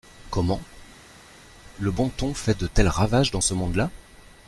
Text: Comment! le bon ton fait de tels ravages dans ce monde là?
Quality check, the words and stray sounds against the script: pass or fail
pass